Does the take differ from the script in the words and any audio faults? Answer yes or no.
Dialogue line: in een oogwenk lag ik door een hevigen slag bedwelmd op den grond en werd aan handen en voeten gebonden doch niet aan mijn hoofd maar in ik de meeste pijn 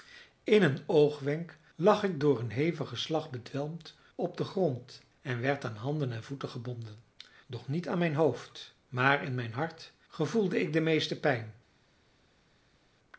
yes